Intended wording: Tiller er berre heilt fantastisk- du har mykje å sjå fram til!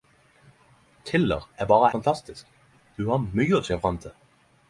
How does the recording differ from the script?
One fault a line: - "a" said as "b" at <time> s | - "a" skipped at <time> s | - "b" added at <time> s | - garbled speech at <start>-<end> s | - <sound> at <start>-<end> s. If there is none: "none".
- "heilt" skipped at 1.9 s